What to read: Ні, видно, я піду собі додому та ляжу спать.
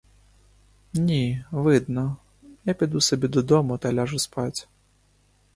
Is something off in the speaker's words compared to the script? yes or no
no